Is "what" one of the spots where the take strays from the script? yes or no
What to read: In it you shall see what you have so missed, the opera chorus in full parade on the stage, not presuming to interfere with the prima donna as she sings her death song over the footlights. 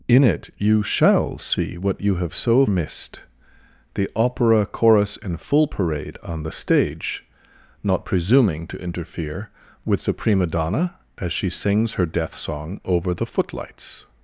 no